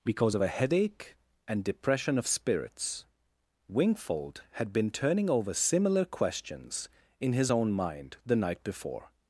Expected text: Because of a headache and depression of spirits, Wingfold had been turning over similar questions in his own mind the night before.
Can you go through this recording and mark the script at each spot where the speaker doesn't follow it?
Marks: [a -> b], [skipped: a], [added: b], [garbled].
Because of a headache and depression of spirits, Wingfold had been turning over similar questions in his own mind the night before.